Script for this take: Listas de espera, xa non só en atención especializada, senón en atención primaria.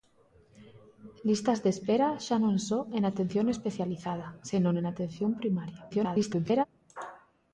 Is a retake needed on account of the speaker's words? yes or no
yes